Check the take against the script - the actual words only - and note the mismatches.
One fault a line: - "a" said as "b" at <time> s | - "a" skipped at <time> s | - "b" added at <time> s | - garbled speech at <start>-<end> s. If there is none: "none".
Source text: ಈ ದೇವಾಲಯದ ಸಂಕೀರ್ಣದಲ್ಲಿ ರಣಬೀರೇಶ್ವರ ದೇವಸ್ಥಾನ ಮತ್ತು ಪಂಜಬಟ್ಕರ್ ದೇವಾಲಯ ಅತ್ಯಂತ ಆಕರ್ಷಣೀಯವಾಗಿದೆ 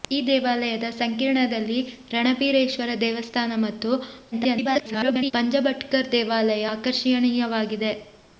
- garbled speech at 4.3-5.3 s
- "ಅತ್ಯಂತ" skipped at 6.7 s